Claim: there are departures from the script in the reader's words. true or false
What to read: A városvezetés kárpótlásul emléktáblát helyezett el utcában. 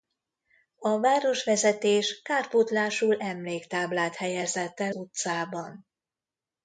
false